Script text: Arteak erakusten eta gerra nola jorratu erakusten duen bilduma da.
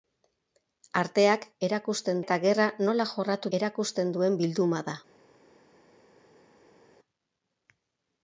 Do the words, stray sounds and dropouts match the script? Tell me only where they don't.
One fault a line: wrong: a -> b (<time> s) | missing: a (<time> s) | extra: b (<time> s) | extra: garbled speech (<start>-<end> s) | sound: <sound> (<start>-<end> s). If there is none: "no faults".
no faults